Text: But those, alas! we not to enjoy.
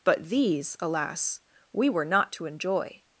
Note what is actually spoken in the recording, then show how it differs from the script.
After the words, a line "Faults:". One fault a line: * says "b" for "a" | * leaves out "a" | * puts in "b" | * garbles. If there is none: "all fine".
But these, alas! we were not to enjoy.
Faults:
* says "these" for "those"
* puts in "were"